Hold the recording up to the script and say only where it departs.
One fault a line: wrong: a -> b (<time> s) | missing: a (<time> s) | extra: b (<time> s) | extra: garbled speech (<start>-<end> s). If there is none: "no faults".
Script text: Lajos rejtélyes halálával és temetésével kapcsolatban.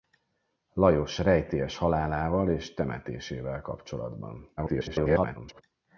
extra: garbled speech (4.6-5.6 s)